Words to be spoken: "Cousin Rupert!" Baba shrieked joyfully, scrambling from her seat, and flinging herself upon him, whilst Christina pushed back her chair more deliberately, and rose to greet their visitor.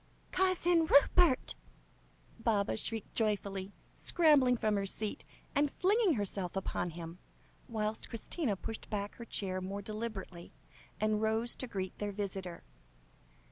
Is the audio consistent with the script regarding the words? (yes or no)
yes